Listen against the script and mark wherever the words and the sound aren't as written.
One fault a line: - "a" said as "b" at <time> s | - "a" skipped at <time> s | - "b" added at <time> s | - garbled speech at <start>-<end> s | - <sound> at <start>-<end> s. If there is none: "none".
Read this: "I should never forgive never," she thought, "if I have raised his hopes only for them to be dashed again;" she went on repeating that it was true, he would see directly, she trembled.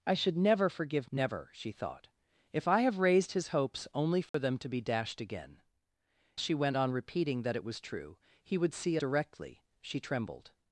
- dropout at 4.3-4.3 s